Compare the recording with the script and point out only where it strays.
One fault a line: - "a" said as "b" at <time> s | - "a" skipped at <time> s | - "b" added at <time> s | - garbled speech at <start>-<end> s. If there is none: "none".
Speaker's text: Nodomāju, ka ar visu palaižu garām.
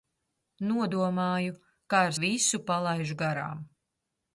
none